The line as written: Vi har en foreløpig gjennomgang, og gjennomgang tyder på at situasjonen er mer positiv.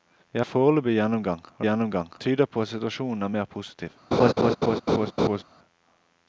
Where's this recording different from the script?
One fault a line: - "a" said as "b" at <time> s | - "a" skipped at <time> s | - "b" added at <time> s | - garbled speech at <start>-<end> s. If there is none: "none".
none